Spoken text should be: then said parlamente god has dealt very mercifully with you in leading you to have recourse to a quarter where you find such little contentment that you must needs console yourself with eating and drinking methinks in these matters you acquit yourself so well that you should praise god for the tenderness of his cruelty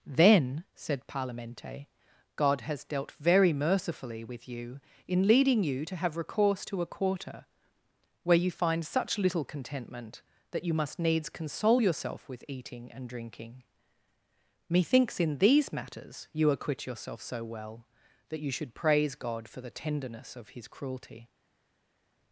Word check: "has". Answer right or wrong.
right